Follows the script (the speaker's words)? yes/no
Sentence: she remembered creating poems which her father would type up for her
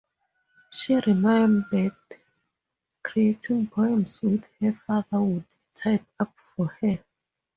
yes